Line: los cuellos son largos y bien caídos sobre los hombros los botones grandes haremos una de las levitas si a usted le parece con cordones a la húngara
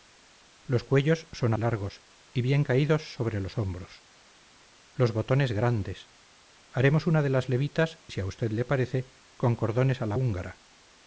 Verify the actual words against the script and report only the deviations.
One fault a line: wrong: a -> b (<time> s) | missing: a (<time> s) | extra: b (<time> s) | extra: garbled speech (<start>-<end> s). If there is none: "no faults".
no faults